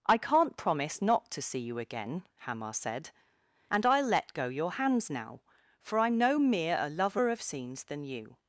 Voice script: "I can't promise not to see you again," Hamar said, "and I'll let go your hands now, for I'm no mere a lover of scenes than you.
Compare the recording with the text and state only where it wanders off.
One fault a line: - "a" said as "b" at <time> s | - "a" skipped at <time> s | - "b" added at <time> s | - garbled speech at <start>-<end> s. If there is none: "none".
none